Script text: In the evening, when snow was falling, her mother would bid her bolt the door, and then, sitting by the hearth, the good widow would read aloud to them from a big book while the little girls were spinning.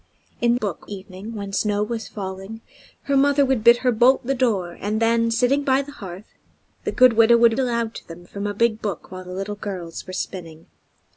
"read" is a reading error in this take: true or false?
true